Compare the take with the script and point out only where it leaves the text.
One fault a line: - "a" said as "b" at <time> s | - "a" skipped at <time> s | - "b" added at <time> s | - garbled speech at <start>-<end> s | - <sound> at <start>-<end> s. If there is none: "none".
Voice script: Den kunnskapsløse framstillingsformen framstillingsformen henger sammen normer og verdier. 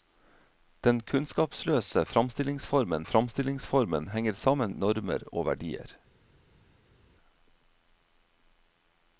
none